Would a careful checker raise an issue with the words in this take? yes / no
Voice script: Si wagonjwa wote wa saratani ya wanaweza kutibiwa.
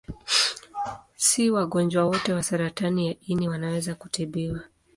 yes